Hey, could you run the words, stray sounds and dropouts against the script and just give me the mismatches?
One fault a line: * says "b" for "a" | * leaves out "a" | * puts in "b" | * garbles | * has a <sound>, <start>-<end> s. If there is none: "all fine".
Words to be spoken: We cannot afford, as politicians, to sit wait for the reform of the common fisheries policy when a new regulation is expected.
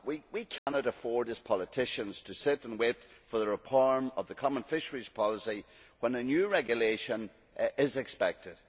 * has a dropout, 0.6-0.7 s
* puts in "and"